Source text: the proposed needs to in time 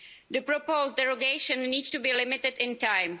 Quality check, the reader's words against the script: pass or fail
fail